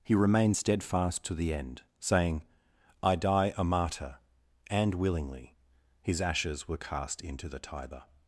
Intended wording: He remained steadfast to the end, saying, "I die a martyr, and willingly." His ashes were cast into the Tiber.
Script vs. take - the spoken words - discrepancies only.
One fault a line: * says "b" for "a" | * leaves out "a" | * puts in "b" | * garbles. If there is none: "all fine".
all fine